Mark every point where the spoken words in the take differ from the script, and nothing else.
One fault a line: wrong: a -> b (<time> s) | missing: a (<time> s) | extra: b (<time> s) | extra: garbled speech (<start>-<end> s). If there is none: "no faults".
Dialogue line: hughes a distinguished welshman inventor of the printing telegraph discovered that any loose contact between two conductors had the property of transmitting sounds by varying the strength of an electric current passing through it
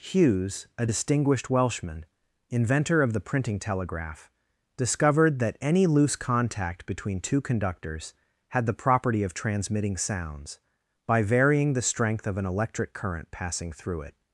no faults